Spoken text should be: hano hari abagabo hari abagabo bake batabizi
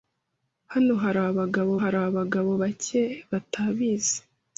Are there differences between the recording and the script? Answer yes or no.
no